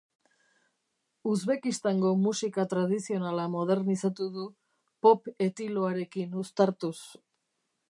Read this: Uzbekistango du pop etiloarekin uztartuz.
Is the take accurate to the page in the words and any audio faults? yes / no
no